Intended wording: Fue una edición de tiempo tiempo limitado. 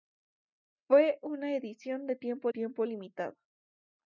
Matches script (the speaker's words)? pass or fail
pass